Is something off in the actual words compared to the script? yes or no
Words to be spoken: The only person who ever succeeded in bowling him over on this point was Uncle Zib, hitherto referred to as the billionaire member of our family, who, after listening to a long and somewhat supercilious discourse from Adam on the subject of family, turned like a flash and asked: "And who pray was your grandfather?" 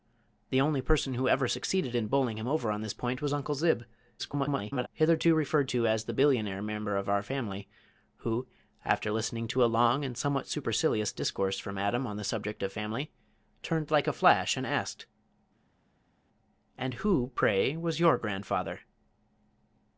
yes